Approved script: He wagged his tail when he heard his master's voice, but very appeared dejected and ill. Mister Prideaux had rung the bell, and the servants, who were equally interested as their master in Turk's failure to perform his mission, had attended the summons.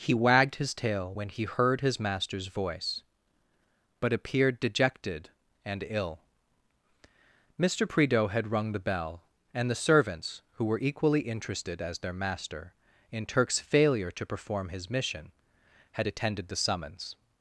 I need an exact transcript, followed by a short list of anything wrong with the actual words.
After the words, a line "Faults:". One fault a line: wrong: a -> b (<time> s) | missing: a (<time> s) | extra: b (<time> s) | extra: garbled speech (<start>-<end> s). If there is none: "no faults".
He wagged his tail when he heard his master's voice, but appeared dejected and ill. Mister Prideaux had rung the bell, and the servants, who were equally interested as their master in Turk's failure to perform his mission, had attended the summons.
Faults:
missing: very (4.1 s)